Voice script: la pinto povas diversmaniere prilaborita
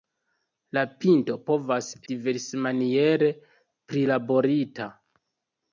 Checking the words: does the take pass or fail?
pass